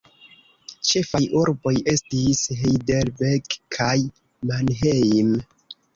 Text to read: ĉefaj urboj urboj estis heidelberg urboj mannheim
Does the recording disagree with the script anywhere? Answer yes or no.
yes